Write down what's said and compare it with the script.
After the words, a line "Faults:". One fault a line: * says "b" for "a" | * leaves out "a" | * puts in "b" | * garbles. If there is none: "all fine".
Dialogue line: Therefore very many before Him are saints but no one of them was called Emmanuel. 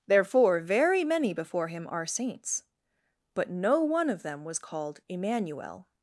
Therefore very many before Him are saints but no one of them was called Emmanuel.
Faults:
all fine